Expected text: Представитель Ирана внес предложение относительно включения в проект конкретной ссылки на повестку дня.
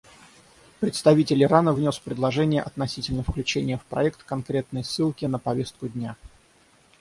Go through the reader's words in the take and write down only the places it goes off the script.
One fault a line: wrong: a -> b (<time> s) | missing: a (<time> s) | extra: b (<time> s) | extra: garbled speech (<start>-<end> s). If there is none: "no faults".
no faults